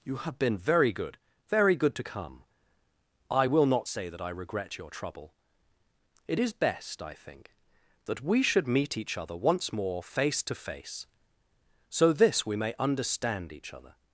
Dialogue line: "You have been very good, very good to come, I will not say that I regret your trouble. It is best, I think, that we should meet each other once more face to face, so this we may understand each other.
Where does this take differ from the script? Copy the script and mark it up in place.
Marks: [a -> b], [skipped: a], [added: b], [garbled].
"You have been very good, very good to come, I will not say that I regret your trouble. It is best, I think, that we should meet each other once more face to face, so this we may understand each other.